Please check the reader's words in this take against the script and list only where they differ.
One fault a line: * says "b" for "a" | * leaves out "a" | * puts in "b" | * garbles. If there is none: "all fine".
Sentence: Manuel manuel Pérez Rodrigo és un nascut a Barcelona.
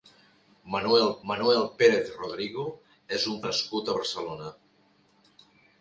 all fine